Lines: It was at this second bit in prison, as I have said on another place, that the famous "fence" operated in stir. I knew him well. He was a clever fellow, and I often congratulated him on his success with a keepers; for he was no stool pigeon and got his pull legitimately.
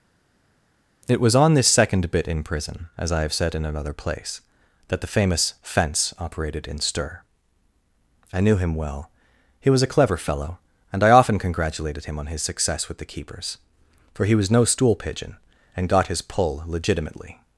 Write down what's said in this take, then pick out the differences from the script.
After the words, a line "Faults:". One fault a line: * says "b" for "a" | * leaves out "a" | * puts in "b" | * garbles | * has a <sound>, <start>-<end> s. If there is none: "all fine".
It was on this second bit in prison, as I have said in another place, that the famous "fence" operated in stir. I knew him well. He was a clever fellow, and I often congratulated him on his success with the keepers; for he was no stool pigeon and got his pull legitimately.
Faults:
* says "on" for "at"
* says "in" for "on"
* says "the" for "a"